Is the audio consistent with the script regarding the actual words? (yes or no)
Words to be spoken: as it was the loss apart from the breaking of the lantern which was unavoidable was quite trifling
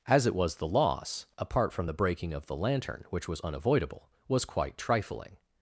yes